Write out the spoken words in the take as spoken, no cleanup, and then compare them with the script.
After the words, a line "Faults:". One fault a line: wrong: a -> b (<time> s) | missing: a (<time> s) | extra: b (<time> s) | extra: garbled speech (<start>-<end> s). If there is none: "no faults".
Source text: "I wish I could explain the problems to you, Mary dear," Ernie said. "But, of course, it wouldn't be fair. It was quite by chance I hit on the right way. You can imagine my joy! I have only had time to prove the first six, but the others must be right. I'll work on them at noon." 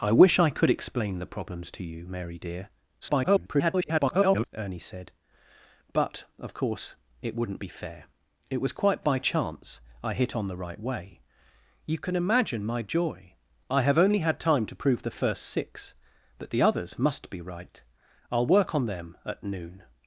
"I wish I could explain the problems to you, Mary dear," [garbled] Ernie said. "But, of course, it wouldn't be fair. It was quite by chance I hit on the right way. You can imagine my joy! I have only had time to prove the first six, but the others must be right. I'll work on them at noon."
Faults:
extra: garbled speech (3.0-4.5 s)